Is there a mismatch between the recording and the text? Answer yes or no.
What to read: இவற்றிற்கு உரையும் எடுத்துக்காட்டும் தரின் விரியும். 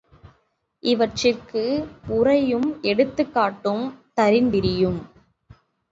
no